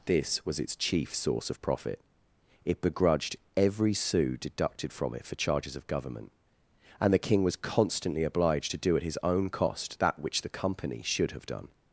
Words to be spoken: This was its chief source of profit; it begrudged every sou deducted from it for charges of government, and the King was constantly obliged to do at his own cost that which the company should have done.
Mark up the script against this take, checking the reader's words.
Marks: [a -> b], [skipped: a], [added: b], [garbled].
This was its chief source of profit; it begrudged every sou deducted from it for charges of government, and the King was constantly obliged to do at his own cost that which the company should have done.